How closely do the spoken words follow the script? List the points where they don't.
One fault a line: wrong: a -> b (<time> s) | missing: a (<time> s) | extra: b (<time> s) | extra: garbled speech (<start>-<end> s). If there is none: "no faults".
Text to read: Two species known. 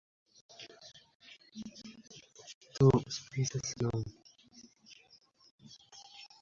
no faults